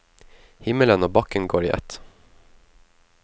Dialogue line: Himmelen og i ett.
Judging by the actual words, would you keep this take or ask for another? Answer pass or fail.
fail